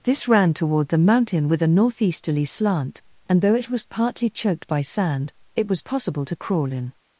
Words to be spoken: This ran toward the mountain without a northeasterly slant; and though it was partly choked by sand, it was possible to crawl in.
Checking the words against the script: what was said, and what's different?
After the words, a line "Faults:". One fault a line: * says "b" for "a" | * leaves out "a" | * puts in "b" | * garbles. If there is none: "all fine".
This ran toward the mountain with a northeasterly slant; and though it was partly choked by sand, it was possible to crawl in.
Faults:
* says "with" for "without"